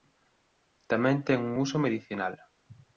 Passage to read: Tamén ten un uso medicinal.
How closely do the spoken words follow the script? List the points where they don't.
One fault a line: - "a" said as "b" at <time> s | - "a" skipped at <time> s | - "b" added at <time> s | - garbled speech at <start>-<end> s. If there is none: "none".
none